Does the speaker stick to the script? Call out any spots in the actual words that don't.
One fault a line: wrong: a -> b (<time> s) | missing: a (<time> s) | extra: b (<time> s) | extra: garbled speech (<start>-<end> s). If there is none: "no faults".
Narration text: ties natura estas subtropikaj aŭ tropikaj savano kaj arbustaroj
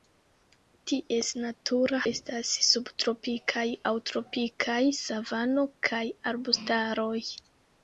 no faults